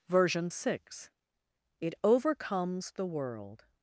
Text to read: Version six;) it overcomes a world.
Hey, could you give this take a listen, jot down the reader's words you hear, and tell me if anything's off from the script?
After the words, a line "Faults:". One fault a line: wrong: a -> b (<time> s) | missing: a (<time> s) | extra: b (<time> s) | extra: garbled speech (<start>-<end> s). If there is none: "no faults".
Version six;) it overcomes the world.
Faults:
wrong: a -> the (2.9 s)